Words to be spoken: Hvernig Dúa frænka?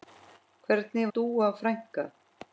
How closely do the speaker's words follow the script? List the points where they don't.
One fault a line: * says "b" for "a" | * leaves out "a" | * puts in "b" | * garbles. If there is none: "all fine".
all fine